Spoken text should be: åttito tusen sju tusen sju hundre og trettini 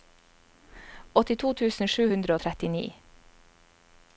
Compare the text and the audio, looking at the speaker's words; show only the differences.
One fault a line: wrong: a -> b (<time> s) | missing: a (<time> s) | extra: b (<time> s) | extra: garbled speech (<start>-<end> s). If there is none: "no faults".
missing: tusen sju (2.1 s)